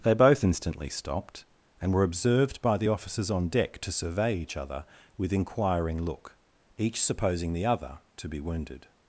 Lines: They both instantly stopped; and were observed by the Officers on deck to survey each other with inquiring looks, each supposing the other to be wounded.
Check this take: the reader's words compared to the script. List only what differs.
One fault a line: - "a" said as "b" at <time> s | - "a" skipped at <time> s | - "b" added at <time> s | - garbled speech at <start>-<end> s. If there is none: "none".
- "looks" said as "look" at 6.0 s